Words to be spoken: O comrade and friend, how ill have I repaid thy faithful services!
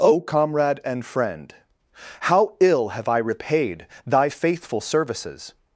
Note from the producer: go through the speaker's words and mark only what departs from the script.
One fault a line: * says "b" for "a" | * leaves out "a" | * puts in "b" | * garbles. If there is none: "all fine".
all fine